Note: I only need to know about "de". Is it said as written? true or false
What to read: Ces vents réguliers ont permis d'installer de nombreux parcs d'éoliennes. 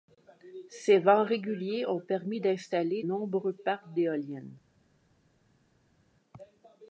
false